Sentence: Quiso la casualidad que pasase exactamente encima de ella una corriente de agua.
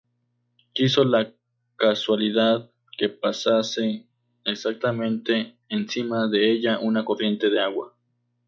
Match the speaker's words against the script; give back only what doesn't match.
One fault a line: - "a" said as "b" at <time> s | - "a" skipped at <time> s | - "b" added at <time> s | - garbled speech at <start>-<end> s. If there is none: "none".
none